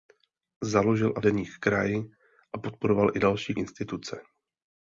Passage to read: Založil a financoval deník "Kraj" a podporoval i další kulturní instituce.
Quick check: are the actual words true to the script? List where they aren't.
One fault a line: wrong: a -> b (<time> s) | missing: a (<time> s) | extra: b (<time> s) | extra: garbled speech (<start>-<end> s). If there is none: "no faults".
missing: financoval (1.2 s)
missing: kulturní (3.5 s)